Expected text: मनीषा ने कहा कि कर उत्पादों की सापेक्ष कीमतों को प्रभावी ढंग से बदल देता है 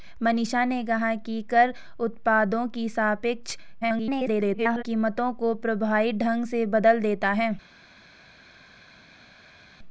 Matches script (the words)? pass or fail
fail